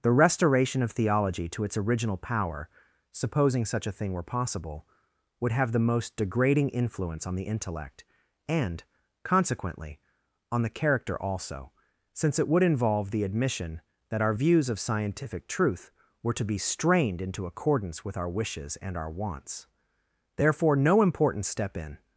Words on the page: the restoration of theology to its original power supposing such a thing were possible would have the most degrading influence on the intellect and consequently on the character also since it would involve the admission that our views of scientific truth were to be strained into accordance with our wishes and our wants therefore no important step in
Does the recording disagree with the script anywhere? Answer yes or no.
no